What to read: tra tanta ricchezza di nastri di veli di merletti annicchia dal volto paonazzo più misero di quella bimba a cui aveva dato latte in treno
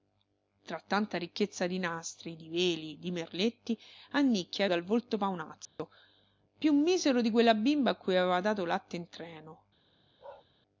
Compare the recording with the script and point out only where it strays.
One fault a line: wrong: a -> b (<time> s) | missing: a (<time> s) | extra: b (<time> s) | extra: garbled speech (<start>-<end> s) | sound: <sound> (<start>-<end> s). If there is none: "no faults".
sound: dropout (5.7-5.8 s)
sound: bark (10.2-10.5 s)